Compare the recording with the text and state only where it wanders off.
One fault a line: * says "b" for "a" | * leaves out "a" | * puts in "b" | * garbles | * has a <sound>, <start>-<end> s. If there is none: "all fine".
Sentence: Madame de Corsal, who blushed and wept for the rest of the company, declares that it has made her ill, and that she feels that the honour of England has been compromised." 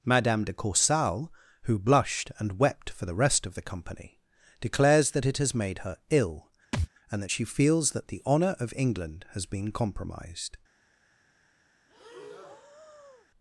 * has a thud, 6.7-6.9 s
* has a breath, 11.9-13.3 s